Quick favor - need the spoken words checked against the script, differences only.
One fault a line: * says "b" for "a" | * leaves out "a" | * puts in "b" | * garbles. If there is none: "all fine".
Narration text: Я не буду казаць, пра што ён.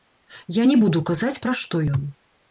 all fine